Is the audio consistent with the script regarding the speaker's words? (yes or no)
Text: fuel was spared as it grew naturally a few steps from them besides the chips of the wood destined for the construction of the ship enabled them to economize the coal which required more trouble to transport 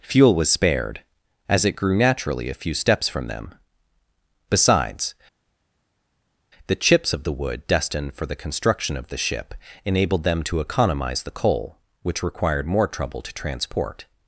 yes